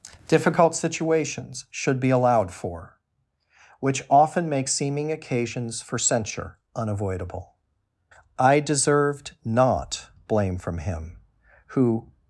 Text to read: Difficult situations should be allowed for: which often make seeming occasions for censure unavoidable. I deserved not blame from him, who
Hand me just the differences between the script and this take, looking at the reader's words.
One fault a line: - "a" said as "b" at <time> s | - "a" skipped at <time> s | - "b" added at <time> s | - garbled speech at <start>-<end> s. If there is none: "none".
none